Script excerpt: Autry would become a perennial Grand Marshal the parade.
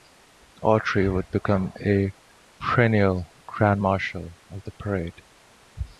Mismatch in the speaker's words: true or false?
true